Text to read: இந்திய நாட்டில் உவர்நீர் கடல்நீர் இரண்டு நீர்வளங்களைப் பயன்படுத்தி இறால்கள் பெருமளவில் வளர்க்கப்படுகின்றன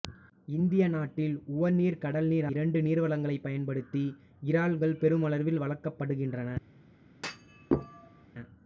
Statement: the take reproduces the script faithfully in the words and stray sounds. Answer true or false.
false